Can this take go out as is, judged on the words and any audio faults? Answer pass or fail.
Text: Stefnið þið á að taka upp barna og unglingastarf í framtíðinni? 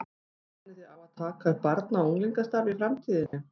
fail